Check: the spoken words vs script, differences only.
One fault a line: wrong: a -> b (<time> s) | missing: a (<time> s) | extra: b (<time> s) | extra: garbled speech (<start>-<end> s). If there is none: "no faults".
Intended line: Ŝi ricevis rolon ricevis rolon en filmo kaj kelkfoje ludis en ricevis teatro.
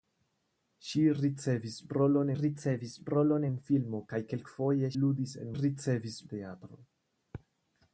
no faults